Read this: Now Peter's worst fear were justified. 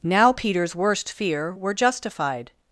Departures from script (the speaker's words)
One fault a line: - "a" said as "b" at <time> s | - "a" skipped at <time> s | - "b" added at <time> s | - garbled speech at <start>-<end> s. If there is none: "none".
none